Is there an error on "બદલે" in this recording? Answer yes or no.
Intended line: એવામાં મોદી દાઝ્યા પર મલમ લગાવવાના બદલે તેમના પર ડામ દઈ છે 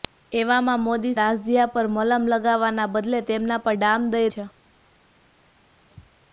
no